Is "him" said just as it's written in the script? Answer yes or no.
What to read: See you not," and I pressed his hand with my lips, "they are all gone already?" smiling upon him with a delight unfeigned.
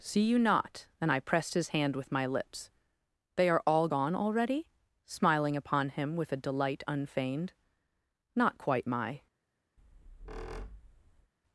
yes